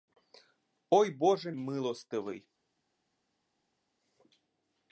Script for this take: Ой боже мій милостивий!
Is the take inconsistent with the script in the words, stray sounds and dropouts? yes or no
yes